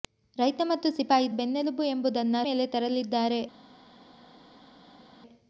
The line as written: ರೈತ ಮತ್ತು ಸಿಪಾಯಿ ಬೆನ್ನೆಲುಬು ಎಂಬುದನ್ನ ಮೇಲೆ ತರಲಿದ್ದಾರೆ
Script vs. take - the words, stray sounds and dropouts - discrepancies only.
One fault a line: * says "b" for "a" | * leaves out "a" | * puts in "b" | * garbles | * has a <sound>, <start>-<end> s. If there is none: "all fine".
all fine